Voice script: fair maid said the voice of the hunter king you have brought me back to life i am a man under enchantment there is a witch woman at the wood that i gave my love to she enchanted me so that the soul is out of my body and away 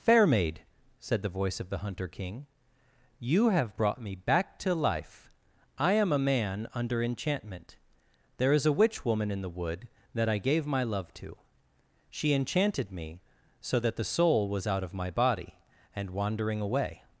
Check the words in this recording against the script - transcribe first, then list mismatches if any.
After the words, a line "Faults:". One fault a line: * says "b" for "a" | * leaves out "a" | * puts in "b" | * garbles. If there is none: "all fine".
fair maid said the voice of the hunter king you have brought me back to life i am a man under enchantment there is a witch woman in the wood that i gave my love to she enchanted me so that the soul was out of my body and wandering away
Faults:
* says "in" for "at"
* says "was" for "is"
* puts in "wandering"